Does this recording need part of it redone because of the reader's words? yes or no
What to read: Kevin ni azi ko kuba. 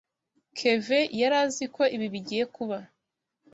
yes